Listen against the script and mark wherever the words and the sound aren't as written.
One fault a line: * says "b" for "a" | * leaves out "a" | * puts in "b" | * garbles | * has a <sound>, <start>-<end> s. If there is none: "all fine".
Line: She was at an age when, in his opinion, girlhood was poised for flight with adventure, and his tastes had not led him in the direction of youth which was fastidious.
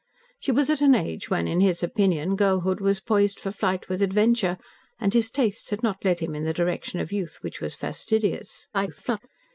* garbles